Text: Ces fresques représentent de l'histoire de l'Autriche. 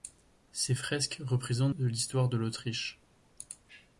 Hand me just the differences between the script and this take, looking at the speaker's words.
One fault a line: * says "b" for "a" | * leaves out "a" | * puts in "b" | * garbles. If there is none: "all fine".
all fine